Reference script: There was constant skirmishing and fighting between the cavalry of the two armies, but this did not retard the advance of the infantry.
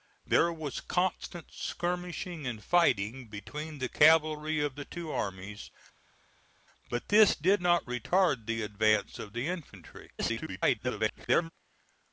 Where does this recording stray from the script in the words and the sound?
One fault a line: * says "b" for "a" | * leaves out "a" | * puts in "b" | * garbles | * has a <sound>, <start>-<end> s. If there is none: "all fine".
* garbles